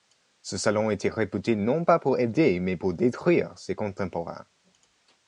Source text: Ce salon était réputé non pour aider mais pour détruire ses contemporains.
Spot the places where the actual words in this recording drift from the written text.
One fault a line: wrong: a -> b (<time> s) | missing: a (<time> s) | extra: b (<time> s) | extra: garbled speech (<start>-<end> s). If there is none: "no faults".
extra: pas (1.9 s)